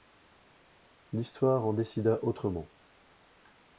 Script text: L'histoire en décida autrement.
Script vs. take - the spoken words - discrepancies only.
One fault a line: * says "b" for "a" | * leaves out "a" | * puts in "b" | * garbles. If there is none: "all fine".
all fine